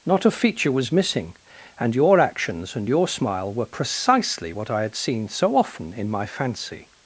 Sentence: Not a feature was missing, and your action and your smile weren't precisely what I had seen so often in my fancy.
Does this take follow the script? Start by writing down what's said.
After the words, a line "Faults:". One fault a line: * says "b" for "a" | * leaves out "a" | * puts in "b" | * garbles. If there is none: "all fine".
Not a feature was missing, and your actions and your smile were precisely what I had seen so often in my fancy.
Faults:
* says "actions" for "action"
* says "were" for "weren't"